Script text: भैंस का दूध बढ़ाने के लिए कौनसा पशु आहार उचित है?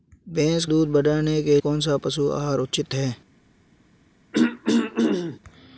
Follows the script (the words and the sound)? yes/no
no